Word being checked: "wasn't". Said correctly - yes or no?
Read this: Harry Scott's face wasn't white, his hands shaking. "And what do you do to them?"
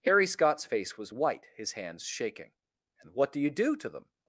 no